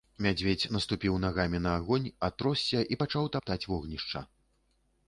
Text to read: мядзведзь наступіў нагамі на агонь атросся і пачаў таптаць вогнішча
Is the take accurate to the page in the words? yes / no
yes